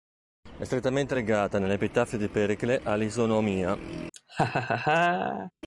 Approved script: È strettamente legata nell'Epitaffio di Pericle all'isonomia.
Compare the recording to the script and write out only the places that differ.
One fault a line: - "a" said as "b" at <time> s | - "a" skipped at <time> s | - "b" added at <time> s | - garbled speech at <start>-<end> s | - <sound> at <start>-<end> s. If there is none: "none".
- laugh at 4.1-5.5 s